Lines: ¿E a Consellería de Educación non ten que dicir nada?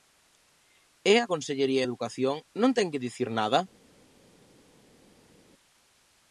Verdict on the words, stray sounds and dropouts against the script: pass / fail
pass